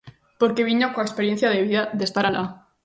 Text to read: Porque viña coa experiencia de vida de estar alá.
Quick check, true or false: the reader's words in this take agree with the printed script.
true